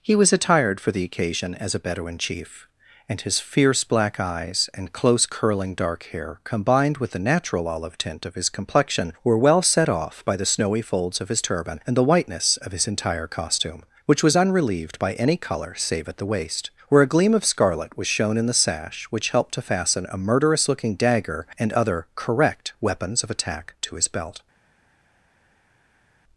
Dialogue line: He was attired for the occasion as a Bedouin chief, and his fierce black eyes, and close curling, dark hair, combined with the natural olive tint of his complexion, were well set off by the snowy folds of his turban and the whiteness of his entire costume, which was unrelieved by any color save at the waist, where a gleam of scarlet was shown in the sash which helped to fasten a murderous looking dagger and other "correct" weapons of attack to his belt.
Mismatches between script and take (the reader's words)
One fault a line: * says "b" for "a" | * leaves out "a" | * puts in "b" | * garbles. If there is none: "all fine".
all fine